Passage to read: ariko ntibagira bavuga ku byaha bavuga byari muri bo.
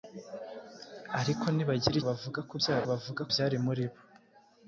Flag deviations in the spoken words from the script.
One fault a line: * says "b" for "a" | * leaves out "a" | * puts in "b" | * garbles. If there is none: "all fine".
all fine